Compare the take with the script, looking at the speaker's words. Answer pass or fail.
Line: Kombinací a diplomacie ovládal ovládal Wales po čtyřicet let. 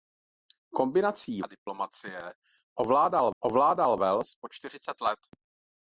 pass